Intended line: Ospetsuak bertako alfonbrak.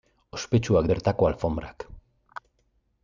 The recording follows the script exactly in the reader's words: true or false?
true